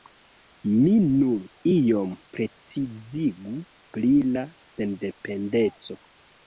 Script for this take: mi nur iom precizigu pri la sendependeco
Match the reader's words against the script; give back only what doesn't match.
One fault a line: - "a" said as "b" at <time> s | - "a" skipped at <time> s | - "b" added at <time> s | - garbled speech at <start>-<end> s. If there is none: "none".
none